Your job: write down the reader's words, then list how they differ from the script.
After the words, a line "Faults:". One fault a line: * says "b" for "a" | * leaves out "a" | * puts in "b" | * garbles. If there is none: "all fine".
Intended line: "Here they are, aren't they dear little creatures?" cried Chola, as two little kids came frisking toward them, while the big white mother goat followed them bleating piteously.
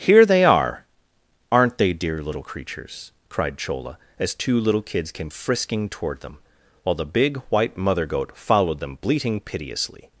"Here they are, aren't they dear little creatures?" cried Chola, as two little kids came frisking toward them, while the big white mother goat followed them bleating piteously.
Faults:
all fine